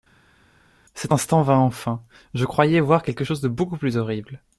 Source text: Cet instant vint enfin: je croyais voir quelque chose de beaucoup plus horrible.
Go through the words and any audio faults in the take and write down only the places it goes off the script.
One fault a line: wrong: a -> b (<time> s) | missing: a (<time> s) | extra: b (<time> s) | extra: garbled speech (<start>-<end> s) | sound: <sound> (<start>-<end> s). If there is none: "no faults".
no faults